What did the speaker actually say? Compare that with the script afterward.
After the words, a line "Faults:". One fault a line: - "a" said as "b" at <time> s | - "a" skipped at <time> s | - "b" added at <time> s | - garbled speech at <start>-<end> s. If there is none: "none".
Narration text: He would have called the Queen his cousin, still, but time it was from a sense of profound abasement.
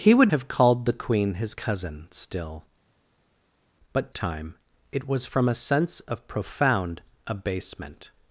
He would have called the Queen his cousin, still, but time it was from a sense of profound abasement.
Faults:
none